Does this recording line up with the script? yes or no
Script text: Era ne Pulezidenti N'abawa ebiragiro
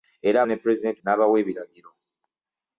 yes